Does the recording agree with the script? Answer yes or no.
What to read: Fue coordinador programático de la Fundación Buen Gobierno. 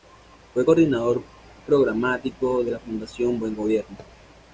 yes